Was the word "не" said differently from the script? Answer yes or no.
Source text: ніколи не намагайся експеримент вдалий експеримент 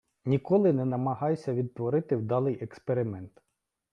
no